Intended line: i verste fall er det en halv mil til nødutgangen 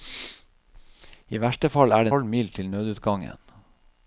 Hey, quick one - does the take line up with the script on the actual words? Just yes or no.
no